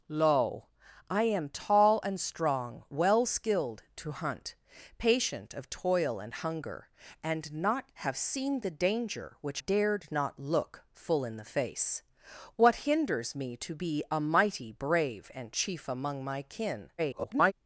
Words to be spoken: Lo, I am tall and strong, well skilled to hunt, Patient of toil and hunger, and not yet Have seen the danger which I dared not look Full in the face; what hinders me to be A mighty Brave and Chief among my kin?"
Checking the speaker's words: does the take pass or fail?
fail